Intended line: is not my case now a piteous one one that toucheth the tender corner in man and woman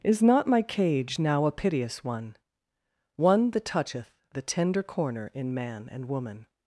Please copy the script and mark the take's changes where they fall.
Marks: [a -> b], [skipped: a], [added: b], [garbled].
is not my [case -> cage] now a piteous one one that toucheth the tender corner in man and woman